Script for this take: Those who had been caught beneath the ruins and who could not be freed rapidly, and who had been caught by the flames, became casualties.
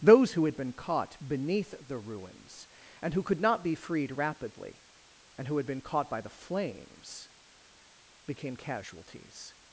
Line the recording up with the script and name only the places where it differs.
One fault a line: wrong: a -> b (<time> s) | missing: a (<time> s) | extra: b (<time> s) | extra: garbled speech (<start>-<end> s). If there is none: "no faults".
no faults